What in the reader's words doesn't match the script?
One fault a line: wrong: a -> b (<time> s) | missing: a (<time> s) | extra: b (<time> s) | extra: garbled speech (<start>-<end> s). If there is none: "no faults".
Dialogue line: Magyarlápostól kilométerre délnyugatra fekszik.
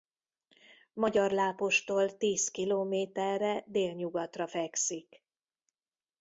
extra: tíz (2.2 s)